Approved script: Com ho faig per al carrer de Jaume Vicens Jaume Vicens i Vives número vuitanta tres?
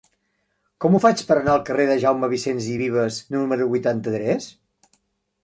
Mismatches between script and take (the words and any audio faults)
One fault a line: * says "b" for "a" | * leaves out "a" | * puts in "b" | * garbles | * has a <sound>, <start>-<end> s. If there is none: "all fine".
* puts in "anar"
* leaves out "Jaume Vicens"